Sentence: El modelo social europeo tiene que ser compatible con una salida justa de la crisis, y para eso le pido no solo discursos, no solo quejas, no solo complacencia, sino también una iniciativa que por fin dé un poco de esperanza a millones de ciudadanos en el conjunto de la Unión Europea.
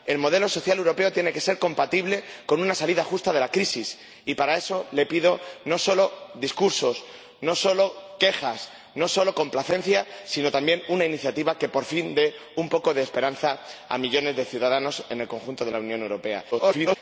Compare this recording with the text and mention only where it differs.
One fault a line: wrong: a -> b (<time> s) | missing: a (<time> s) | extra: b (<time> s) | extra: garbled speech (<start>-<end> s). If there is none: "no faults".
extra: garbled speech (16.5-17.0 s)